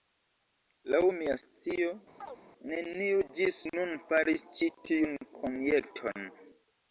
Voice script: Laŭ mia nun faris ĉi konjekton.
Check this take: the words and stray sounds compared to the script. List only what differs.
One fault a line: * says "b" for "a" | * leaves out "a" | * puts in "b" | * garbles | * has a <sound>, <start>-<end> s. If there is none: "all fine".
* puts in "scio neniu ĝis"
* has a chirp, 2.2-2.4 s
* puts in "tiun"